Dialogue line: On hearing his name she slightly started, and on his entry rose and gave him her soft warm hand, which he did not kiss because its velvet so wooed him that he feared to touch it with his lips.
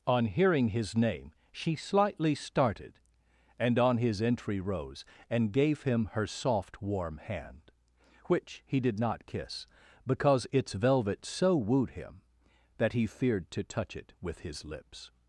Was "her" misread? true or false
false